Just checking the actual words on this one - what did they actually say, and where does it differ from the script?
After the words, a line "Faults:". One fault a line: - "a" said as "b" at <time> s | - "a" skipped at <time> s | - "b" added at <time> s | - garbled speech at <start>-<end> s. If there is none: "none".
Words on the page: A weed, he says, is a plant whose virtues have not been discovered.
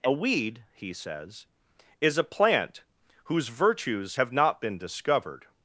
A weed, he says, is a plant whose virtues have not been discovered.
Faults:
none